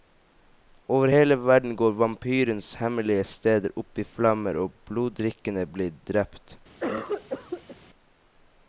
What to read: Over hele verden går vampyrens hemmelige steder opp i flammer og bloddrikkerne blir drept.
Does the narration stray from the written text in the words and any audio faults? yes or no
yes